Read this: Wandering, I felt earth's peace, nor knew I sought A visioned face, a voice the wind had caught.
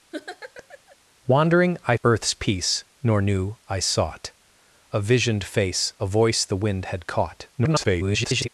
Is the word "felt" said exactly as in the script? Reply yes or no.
no